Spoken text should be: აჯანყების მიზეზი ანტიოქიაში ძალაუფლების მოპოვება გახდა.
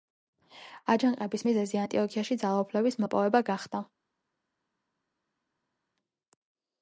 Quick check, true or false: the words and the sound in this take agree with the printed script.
true